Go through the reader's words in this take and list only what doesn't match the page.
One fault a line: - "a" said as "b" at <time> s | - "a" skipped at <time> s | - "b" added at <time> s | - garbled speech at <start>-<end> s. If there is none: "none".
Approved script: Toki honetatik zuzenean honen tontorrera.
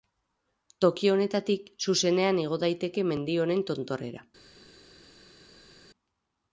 - "igo daiteke mendi" added at 2.5 s